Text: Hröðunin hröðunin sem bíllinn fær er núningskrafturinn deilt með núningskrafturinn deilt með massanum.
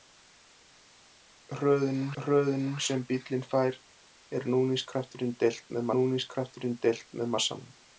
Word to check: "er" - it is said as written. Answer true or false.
true